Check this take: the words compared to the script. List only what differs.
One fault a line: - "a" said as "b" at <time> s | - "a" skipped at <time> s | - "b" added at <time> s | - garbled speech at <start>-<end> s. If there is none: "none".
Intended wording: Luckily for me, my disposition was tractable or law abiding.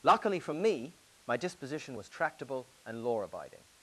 - "or" said as "and" at 2.9 s